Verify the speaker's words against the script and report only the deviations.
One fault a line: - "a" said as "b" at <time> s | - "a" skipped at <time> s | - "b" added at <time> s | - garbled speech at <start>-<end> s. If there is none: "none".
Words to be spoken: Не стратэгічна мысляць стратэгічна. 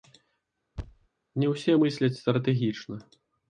- "стратэгічна" said as "ўсе" at 1.5 s